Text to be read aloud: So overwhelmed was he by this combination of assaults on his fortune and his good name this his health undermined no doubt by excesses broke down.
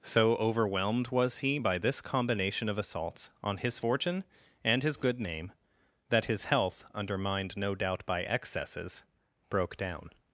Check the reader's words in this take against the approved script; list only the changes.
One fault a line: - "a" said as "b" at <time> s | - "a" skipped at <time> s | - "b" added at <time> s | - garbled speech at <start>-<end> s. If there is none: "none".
- "this" said as "that" at 6.1 s